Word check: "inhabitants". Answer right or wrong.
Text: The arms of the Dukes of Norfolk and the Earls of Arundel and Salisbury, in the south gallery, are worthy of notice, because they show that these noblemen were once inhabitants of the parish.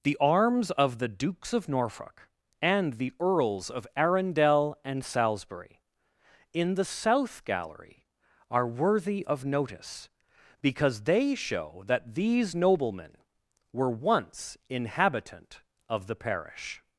wrong